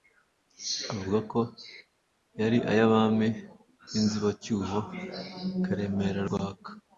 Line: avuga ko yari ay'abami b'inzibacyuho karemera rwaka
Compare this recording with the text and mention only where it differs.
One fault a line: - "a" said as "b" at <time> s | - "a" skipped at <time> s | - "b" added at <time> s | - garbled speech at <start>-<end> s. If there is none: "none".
none